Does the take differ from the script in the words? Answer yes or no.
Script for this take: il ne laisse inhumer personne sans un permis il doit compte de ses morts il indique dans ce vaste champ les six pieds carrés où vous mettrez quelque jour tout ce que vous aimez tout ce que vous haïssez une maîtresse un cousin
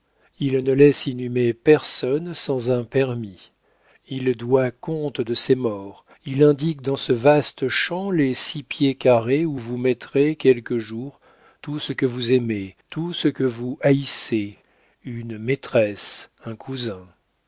no